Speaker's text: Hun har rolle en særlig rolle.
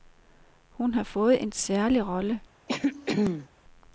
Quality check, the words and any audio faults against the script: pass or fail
fail